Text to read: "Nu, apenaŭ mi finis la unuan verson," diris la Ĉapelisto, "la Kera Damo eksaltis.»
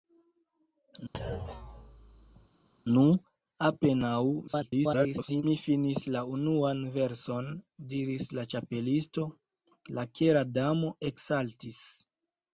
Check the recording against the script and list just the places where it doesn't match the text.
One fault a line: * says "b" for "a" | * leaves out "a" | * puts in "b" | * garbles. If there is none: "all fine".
* garbles